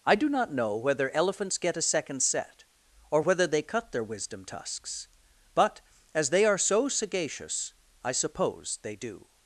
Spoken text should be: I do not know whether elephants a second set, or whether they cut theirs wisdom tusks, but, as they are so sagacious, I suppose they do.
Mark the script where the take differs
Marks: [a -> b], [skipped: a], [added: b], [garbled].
I do not know whether elephants [added: get] a second set, or whether they cut [theirs -> their] wisdom tusks, but, as they are so sagacious, I suppose they do.